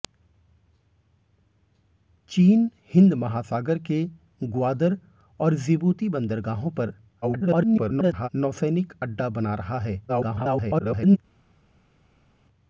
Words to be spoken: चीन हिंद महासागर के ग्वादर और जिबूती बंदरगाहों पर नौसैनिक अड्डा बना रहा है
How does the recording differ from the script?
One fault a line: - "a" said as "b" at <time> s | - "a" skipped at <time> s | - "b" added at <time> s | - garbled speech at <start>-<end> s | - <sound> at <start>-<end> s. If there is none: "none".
- garbled speech at 7.2-8.3 s
- garbled speech at 10.1-11.2 s